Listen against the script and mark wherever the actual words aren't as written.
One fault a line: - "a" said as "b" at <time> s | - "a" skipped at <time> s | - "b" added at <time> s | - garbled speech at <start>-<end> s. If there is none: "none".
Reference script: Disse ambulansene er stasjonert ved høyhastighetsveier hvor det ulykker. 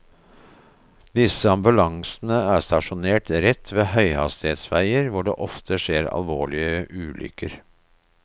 - "rett" added at 3.5 s
- "ofte skjer alvorlige" added at 5.5 s